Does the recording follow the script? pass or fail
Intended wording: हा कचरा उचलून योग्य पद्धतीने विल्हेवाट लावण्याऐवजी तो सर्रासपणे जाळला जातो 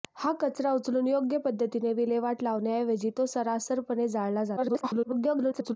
fail